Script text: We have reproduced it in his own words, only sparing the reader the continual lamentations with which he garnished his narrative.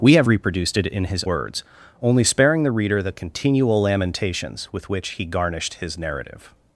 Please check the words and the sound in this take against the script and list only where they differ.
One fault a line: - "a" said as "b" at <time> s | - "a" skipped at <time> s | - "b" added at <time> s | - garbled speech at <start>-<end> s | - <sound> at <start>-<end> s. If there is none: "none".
- "own" skipped at 1.2 s